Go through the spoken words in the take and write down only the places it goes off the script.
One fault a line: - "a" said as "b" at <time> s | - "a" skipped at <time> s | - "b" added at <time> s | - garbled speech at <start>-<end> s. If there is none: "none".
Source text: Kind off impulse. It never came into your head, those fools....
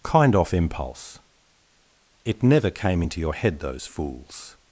none